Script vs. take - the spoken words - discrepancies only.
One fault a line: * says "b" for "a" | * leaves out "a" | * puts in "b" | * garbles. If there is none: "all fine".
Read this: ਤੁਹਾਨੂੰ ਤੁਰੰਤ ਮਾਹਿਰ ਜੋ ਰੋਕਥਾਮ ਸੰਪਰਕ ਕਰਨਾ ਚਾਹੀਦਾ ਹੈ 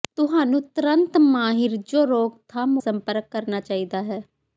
all fine